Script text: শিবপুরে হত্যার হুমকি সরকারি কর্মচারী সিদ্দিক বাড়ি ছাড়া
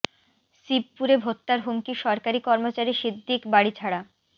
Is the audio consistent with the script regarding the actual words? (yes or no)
yes